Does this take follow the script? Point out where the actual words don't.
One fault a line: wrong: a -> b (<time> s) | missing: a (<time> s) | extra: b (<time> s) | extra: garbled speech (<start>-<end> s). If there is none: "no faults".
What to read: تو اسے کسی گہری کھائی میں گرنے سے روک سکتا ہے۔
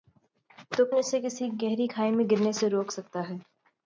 no faults